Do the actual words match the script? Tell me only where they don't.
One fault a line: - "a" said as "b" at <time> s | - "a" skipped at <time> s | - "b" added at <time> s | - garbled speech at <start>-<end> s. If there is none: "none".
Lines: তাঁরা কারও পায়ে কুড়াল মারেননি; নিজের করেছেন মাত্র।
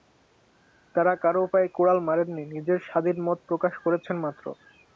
- "স্বাধীন মত প্রকাশ" added at 2.9 s